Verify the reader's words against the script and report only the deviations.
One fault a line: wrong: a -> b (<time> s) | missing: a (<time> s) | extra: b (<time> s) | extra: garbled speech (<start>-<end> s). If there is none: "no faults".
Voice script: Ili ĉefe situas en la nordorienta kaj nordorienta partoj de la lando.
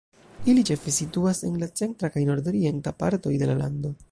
wrong: nordorienta -> centra (1.8 s)